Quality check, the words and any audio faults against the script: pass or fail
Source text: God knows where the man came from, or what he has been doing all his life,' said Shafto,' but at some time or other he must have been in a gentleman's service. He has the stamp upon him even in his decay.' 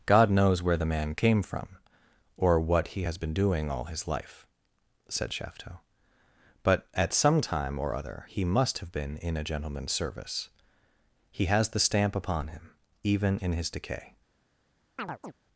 fail